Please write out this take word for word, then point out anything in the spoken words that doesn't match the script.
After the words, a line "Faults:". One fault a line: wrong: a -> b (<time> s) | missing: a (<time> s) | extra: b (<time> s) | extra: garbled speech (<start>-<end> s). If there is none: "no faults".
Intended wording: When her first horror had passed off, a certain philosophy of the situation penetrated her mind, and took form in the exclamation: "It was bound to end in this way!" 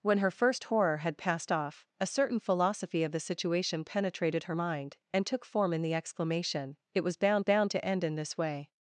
When her first horror had passed off, a certain philosophy of the situation penetrated her mind, and took form in the exclamation: "It was bound bound to end in this way!"
Faults:
extra: bound (7.4 s)